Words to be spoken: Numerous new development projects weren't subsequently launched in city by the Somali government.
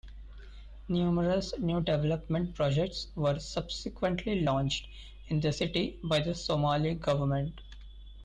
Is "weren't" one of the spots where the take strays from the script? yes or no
yes